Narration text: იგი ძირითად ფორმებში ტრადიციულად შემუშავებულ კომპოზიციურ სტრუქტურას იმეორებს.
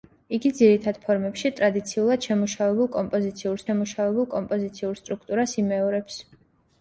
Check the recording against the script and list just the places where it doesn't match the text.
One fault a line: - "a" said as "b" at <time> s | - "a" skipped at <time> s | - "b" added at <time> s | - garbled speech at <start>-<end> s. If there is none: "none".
- "შემუშავებულ კომპოზიციურ" added at 3.7 s